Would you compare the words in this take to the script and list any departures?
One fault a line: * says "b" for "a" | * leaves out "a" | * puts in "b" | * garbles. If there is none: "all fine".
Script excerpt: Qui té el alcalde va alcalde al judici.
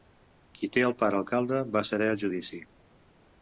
* puts in "pare"
* says "serè" for "alcalde"